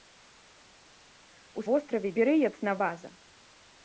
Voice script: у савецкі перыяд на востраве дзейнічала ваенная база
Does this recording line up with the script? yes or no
no